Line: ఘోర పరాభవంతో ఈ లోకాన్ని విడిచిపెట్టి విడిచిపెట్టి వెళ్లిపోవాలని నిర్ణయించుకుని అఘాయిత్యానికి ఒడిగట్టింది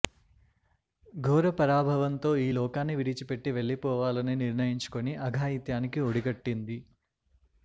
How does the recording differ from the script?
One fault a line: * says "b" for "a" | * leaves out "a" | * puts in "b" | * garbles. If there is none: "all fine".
* leaves out "విడిచిపెట్టి"